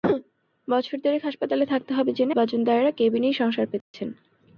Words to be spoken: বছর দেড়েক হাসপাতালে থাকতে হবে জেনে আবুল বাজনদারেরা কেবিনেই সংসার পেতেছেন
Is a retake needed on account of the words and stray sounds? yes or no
yes